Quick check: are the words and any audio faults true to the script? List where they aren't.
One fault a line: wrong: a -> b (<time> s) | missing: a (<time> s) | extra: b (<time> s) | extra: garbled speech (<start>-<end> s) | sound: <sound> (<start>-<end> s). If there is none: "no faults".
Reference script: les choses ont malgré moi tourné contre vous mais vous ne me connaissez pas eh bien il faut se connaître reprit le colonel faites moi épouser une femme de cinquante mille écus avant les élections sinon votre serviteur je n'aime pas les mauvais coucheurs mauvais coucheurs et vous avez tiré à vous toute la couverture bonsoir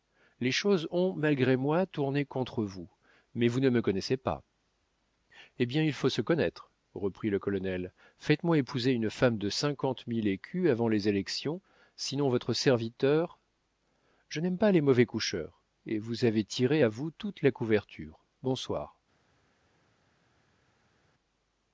missing: mauvais coucheurs (15.6 s)